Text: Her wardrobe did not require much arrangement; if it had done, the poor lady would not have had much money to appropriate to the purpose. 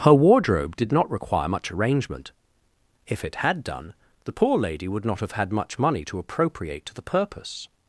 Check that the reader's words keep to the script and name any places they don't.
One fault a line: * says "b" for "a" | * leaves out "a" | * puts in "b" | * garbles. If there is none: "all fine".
all fine